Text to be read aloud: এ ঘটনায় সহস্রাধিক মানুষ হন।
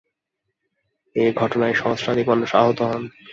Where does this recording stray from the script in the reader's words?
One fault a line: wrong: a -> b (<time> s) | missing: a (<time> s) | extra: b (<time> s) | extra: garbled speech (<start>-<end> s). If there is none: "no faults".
extra: আহত (2.5 s)